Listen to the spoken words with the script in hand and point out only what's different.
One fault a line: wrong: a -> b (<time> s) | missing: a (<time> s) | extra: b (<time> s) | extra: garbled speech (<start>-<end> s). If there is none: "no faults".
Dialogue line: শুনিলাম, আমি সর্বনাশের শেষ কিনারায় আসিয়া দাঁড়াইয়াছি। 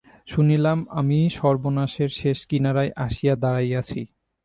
no faults